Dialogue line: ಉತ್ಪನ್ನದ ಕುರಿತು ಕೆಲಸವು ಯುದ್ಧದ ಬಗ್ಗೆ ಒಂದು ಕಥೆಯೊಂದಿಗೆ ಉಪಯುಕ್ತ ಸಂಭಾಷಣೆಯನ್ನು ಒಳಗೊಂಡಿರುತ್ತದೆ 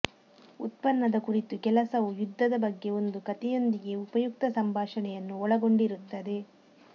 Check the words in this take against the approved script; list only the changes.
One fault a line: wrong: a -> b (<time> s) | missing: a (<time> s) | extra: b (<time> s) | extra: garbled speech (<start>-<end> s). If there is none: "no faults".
no faults